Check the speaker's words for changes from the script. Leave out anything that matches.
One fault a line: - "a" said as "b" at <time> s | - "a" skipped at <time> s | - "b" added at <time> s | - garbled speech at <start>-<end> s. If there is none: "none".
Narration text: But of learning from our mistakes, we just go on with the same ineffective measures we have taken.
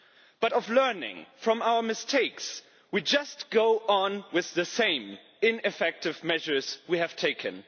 none